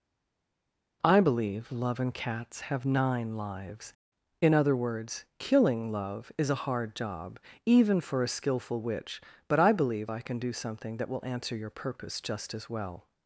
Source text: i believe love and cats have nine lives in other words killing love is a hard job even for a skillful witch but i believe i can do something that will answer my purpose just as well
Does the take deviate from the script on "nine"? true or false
false